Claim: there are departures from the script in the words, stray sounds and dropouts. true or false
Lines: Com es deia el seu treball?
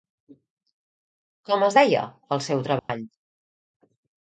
true